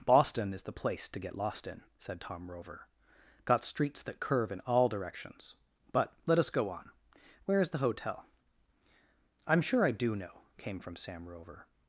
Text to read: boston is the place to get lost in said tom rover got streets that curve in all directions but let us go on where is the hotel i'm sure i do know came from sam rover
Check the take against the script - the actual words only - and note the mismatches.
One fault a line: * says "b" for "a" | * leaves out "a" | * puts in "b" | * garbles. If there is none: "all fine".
all fine